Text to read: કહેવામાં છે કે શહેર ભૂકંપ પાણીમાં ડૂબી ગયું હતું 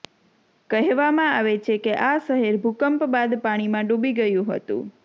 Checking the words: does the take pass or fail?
fail